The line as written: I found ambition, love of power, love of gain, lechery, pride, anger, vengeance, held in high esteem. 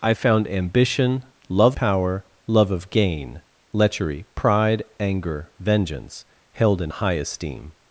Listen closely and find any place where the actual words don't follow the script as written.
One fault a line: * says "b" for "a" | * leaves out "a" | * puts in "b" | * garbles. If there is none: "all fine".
* leaves out "of"